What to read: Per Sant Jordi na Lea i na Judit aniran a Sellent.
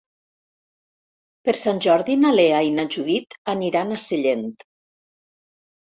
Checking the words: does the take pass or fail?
pass